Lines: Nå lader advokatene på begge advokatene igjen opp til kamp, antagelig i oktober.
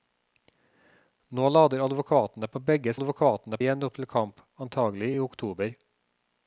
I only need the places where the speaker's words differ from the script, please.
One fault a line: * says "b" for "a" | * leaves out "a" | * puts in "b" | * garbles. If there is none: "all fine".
all fine